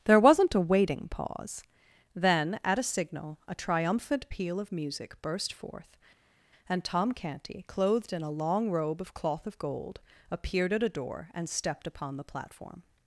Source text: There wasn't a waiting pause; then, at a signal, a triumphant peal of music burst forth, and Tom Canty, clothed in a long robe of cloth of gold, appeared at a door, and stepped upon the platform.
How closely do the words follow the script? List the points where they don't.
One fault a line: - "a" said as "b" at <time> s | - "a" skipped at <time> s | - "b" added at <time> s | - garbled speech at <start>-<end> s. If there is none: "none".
none